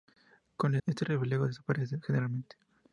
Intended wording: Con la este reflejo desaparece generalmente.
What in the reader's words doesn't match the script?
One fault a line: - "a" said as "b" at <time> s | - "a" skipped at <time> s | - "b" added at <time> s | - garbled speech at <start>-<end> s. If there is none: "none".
none